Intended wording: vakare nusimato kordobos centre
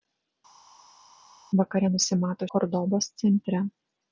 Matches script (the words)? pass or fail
pass